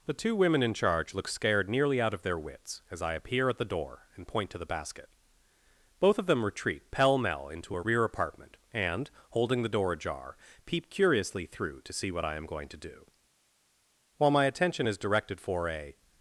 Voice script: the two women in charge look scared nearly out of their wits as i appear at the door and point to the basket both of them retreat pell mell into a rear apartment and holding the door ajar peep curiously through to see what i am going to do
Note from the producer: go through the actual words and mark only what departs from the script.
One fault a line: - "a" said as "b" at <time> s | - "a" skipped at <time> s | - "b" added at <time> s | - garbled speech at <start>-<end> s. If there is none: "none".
- "while my attention is directed for a" added at 14.2 s